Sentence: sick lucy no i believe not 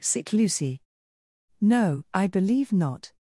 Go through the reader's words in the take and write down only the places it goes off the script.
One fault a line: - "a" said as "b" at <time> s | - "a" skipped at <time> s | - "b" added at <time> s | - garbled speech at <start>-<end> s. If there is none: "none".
none